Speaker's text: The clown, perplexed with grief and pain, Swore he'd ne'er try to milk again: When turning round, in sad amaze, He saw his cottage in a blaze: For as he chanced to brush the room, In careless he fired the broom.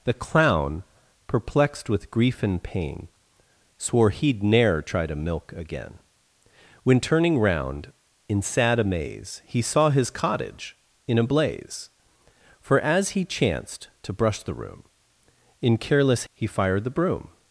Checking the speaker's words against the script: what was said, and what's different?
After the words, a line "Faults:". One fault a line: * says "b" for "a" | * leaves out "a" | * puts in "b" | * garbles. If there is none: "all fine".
The clown, perplexed with grief and pain, Swore he'd ne'er try to milk again: When turning round, in sad amaze, He saw his cottage in a blaze: For as he chanced to brush the room, In careless he fired the broom.
Faults:
all fine